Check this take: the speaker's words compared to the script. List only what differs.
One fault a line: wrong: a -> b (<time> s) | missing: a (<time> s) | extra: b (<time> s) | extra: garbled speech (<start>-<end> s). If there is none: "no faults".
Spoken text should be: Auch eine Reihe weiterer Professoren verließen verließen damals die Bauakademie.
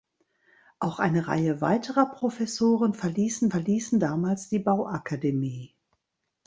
no faults